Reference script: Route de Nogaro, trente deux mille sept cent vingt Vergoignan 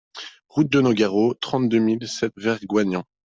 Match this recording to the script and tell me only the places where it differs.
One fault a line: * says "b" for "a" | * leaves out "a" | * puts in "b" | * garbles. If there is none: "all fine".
* leaves out "cent vingt"